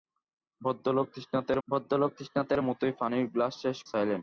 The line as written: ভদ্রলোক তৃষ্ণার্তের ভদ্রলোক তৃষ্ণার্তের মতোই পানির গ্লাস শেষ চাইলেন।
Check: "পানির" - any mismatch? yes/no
no